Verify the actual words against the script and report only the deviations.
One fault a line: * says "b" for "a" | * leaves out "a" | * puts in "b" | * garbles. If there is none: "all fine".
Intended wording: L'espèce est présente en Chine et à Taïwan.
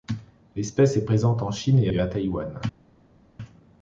* puts in "et"